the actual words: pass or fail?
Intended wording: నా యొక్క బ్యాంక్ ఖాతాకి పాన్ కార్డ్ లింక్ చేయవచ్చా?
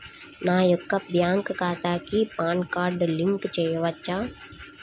pass